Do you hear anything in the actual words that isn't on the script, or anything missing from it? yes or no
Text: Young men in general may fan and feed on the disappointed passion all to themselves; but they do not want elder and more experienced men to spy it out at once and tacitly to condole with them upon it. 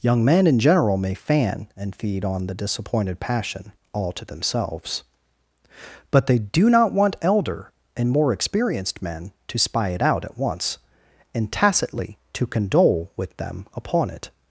no